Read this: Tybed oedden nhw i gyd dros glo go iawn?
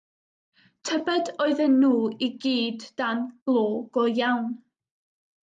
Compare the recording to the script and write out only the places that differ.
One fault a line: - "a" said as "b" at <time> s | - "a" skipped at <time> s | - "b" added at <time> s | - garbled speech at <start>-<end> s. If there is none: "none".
- "dros" said as "dan" at 3.0 s